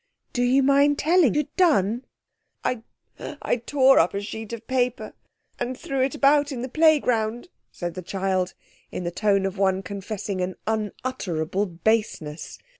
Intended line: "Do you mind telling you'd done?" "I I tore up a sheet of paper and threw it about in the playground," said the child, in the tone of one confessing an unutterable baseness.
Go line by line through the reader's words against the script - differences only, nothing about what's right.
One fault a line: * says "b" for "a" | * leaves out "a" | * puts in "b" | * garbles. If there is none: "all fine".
all fine